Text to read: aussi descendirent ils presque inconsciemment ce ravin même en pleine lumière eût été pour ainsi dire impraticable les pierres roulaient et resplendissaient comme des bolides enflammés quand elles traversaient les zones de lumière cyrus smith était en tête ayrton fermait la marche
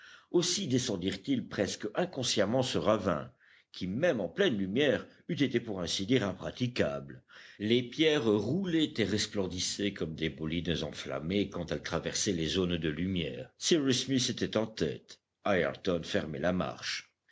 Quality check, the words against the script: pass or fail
fail